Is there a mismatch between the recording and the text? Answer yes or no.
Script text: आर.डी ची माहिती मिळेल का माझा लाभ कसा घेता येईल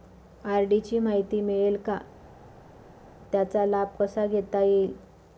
yes